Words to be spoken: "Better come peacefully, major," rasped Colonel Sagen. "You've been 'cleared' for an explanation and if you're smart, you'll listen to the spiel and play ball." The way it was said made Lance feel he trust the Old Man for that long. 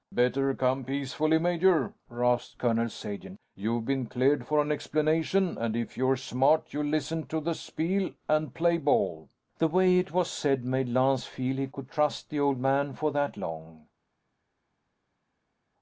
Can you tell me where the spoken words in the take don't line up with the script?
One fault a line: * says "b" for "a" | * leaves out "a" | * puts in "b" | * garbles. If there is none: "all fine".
* puts in "could"